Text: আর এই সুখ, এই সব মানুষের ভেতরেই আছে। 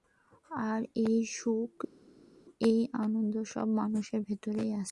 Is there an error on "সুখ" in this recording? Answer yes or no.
no